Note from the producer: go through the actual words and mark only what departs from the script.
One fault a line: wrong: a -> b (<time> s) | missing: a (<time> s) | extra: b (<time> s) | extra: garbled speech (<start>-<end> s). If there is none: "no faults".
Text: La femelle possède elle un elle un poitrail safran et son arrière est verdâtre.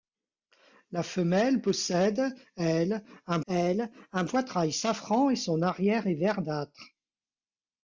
no faults